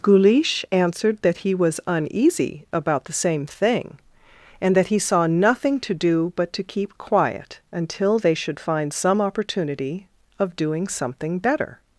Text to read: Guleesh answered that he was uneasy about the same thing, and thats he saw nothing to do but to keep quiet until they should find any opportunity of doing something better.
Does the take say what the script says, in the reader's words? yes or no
no